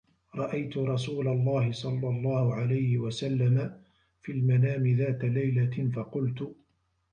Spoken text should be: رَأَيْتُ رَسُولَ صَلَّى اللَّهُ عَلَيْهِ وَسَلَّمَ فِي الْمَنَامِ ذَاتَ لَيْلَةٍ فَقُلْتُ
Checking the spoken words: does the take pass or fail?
fail